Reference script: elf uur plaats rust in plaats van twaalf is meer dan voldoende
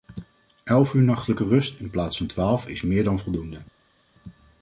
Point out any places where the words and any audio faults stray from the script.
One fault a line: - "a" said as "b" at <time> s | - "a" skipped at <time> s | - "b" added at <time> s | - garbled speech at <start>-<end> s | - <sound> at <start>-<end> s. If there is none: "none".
- "plaats" said as "nachtelijke" at 1.0 s